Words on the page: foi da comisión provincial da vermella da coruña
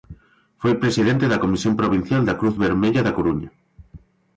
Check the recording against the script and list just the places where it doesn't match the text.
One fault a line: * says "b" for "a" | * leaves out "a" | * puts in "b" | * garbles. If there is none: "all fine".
* puts in "presidente"
* puts in "cruz"